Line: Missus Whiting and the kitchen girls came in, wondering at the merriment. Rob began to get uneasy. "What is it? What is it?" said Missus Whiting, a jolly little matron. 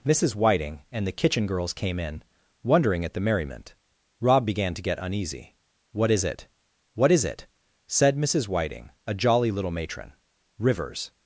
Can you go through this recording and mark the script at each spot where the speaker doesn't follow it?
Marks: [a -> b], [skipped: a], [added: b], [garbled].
Missus Whiting and the kitchen girls came in, wondering at the merriment. Rob began to get uneasy. "What is it? What is it?" said Missus Whiting, a jolly little matron. [added: Rivers]